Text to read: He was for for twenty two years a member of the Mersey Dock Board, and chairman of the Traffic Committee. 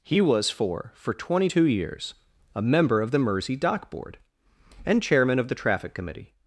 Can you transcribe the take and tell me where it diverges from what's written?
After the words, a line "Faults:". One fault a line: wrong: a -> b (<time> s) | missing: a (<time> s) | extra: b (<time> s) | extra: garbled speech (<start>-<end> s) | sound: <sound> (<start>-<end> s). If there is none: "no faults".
He was for for twenty two years a member of the Mersey Dock Board, and chairman of the Traffic Committee.
Faults:
no faults